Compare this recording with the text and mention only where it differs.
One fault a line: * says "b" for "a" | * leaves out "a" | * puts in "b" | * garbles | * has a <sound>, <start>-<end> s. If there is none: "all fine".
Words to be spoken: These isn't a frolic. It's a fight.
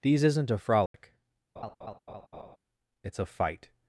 * has a dropout, 0.9-0.9 s
* has a laugh, 1.6-2.6 s